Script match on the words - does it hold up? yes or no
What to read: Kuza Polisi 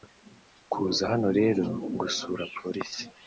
no